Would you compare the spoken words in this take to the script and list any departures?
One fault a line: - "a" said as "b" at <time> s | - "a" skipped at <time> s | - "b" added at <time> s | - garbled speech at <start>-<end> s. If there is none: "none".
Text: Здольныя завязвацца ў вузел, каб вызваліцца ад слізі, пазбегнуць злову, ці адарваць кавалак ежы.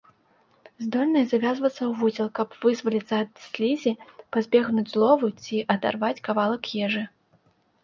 none